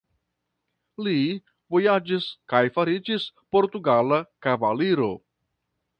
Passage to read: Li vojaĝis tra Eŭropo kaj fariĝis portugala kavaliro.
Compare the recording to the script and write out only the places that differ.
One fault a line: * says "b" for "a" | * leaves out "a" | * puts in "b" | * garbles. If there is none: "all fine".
* leaves out "tra Eŭropo"